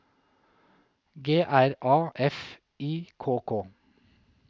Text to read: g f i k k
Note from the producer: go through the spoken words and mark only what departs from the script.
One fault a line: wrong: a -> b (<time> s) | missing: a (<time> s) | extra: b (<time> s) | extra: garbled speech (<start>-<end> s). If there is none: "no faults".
extra: r a (1.4 s)